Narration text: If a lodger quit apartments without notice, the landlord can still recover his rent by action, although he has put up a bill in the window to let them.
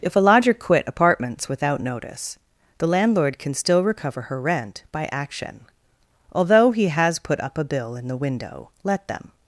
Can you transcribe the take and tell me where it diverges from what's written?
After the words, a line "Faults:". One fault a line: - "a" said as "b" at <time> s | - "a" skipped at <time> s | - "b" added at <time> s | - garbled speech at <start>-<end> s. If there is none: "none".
If a lodger quit apartments without notice, the landlord can still recover her rent by action, although he has put up a bill in the window let them.
Faults:
- "his" said as "her" at 4.2 s
- "to" skipped at 8.7 s